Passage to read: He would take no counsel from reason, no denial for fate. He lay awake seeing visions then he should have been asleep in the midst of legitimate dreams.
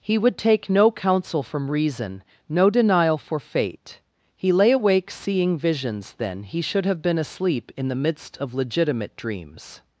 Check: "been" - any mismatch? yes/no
no